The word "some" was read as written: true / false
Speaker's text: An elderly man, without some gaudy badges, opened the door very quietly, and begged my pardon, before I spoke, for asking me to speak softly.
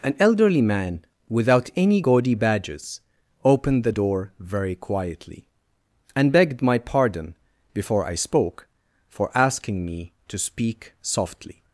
false